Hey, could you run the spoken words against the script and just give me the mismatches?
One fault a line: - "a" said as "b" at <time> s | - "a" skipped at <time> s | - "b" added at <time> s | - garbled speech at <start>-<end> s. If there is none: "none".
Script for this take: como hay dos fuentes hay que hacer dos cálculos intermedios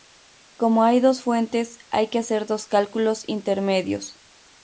none